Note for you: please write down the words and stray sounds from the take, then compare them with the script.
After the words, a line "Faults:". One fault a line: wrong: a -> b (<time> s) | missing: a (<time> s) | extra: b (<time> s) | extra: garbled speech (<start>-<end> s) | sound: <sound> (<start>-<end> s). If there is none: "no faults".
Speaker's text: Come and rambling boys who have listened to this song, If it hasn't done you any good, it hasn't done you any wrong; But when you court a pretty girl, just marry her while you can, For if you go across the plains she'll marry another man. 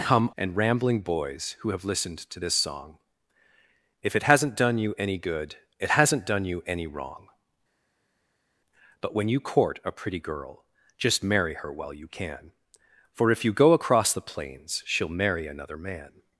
Come and rambling boys who have listened to this song, If it hasn't done you any good, it hasn't done you any wrong; But when you court a pretty girl, just marry her while you can, For if you go across the plains she'll marry another man.
Faults:
no faults